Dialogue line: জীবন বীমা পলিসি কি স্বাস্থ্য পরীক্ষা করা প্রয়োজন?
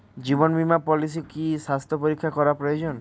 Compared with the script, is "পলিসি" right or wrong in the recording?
right